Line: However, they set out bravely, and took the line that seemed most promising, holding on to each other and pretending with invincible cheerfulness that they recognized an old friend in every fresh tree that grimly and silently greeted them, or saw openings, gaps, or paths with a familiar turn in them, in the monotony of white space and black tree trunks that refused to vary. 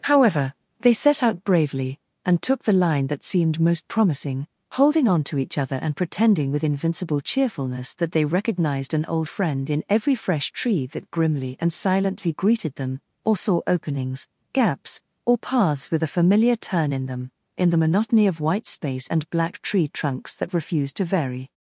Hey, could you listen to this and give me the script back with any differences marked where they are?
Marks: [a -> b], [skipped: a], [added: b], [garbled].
However, they set out bravely, and took the line that seemed most promising, holding on to each other and pretending with invincible cheerfulness that they recognized an old friend in every fresh tree that grimly and silently greeted them, or saw openings, gaps, or paths with a familiar turn in them, in the monotony of white space and black tree trunks that refused to vary.